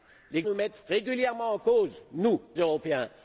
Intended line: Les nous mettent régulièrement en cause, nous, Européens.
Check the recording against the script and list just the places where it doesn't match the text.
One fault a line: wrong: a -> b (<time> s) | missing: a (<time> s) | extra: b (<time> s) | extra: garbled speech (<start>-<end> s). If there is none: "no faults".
no faults